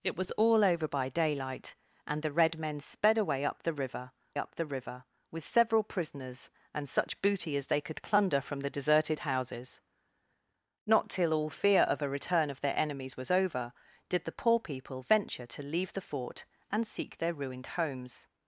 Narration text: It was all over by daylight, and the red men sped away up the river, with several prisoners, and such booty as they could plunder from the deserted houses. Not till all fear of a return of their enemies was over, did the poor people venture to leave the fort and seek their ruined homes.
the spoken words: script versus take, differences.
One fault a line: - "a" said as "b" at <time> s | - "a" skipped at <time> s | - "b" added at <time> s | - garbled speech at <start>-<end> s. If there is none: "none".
- "up the river" added at 4.4 s